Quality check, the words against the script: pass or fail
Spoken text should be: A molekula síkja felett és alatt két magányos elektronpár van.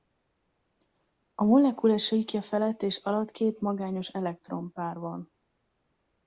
pass